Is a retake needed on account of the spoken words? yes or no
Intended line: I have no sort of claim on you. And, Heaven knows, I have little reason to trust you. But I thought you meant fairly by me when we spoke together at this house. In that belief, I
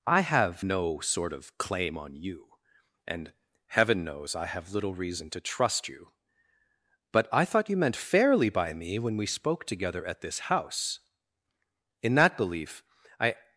no